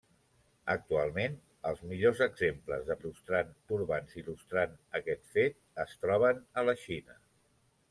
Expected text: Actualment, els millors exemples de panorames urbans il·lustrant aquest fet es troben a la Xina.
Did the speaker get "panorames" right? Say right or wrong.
wrong